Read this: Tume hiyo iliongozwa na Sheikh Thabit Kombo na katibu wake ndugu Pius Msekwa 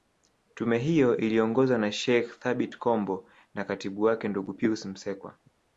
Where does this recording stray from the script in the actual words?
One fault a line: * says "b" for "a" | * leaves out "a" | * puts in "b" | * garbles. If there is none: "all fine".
all fine